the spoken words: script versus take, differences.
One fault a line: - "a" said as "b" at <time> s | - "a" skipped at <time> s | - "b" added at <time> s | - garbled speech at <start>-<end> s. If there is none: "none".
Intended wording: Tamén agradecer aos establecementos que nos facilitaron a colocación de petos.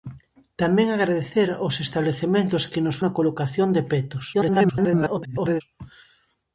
- "facilitaron" skipped at 3.0 s
- garbled speech at 4.3-5.6 s